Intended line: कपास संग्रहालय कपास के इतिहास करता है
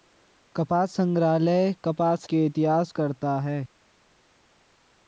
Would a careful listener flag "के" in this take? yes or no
no